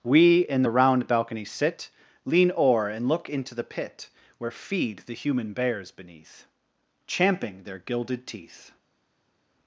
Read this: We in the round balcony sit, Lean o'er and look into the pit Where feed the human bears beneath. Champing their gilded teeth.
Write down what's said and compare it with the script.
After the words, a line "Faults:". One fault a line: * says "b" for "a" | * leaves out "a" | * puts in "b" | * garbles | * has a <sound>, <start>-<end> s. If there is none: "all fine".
We in the round balcony sit, Lean o'er and look into the pit Where feed the human bears beneath. Champing their gilded teeth.
Faults:
all fine